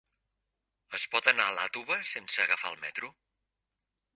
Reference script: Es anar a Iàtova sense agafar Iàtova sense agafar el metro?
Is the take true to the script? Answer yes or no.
no